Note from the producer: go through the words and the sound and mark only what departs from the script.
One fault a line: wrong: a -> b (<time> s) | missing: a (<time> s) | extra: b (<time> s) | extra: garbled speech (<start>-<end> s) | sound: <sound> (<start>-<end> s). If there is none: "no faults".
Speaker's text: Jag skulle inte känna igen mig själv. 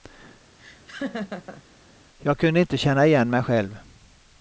sound: laugh (0.6-1.6 s)
wrong: skulle -> kunde (2.4 s)